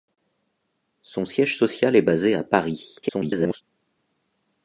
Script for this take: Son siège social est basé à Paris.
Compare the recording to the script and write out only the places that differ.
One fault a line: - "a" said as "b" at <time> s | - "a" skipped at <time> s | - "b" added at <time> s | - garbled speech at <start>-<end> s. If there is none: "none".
- garbled speech at 3.0-3.6 s